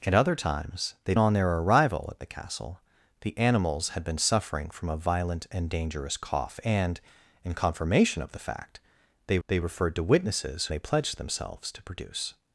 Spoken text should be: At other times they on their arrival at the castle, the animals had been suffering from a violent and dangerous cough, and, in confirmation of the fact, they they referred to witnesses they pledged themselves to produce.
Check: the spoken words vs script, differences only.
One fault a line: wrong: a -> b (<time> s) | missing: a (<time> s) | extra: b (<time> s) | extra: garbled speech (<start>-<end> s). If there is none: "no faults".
no faults